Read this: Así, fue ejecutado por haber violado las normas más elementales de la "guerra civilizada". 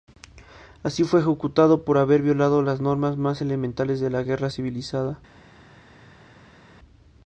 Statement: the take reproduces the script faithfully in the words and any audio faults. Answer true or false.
true